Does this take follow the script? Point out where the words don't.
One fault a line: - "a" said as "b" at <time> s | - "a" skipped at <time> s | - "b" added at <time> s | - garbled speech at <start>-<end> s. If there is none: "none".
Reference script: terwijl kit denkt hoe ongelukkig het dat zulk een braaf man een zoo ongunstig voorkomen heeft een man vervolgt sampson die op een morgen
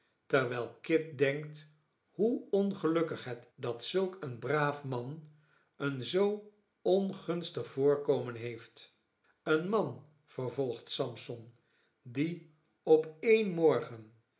none